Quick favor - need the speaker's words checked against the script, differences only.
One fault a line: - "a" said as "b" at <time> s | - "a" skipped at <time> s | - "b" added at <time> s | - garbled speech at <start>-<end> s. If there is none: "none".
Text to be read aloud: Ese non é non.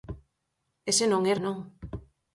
none